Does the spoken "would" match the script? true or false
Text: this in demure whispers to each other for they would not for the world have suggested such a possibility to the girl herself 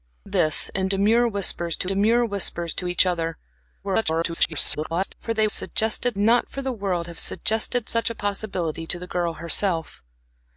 false